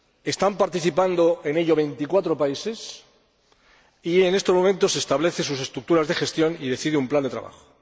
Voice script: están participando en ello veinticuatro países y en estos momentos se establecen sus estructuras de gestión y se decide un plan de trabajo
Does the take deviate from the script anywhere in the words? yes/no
no